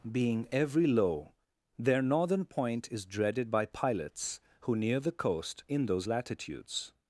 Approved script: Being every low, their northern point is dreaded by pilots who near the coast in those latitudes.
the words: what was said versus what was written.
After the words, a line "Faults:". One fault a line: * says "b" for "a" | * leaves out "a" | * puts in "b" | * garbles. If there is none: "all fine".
Being every low, their northern point is dreaded by pilots who near the coast in those latitudes.
Faults:
all fine